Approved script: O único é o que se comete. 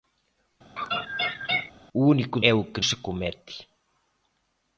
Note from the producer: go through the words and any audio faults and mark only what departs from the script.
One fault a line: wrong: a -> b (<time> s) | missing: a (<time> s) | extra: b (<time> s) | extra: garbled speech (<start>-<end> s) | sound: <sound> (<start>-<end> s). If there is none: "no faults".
sound: laugh (0.8-1.7 s)